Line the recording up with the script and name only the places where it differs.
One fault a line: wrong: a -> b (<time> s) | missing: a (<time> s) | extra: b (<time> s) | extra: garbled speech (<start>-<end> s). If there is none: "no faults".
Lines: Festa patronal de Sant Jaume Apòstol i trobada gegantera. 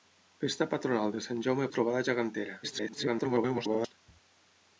missing: Apòstol (1.7 s)
extra: garbled speech (2.6-3.9 s)